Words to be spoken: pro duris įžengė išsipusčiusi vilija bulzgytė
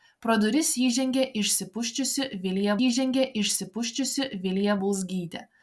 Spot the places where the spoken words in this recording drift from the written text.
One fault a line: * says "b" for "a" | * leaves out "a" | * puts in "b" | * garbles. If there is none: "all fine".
* puts in "įžengė išsipusčiusi vilija"